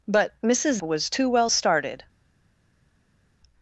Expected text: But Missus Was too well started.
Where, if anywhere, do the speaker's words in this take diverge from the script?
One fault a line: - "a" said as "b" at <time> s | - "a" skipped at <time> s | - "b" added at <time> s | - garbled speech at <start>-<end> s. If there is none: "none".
none